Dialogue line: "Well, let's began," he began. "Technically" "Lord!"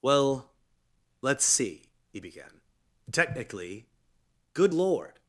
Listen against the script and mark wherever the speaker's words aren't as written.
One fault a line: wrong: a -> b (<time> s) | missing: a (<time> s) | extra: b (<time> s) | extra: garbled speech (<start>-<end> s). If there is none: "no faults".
wrong: began -> see (1.4 s)
extra: Good (4.5 s)